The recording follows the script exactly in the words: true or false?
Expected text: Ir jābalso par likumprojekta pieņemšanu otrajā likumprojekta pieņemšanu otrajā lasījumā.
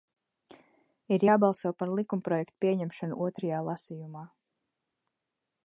false